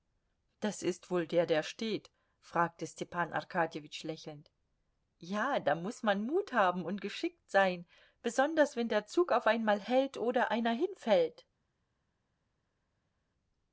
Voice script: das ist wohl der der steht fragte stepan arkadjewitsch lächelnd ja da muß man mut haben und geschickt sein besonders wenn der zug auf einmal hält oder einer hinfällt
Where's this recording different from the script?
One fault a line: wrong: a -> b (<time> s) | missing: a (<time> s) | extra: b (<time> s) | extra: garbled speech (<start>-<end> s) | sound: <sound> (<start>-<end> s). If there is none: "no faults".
no faults